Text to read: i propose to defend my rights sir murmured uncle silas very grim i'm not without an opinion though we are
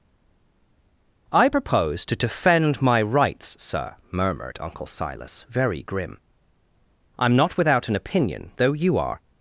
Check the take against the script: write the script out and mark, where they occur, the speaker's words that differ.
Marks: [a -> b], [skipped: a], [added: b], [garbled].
i propose to defend my rights sir murmured uncle silas very grim i'm not without an opinion though [we -> you] are